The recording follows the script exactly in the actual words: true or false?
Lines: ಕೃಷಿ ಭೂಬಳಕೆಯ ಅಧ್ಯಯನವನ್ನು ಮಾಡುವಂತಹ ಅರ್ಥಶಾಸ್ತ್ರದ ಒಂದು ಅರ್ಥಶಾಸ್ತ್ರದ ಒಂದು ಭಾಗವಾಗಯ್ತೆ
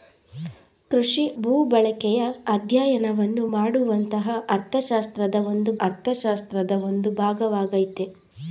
true